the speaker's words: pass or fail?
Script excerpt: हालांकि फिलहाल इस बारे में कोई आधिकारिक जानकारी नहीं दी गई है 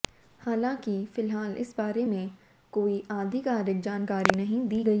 pass